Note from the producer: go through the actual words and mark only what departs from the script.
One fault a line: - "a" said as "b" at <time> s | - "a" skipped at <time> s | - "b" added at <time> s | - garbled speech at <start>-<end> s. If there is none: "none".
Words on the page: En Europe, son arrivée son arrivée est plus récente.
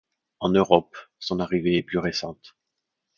- "son arrivée" skipped at 1.8 s